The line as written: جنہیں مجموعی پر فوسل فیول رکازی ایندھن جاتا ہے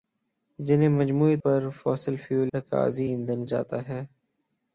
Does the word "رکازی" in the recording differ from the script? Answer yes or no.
no